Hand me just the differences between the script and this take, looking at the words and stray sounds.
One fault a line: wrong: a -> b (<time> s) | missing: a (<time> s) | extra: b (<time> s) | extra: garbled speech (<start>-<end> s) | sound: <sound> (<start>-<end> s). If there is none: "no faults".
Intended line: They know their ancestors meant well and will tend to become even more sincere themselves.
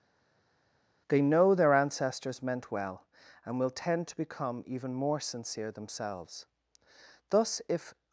extra: Thus if (7.3 s)